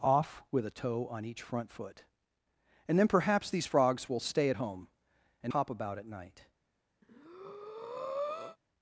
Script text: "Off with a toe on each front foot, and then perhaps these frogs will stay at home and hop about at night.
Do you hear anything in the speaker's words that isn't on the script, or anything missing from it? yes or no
no